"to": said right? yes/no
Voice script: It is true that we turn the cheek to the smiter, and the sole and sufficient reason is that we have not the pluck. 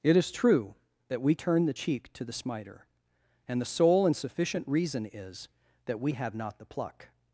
yes